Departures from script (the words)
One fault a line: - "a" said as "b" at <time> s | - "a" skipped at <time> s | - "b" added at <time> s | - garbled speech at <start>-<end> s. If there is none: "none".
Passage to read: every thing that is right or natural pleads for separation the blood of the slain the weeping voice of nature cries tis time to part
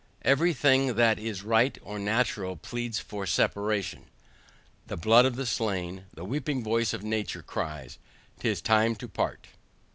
none